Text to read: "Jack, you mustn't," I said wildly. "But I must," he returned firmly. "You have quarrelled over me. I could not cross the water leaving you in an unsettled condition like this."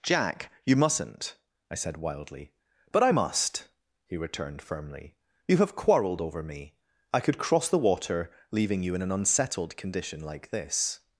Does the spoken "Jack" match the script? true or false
true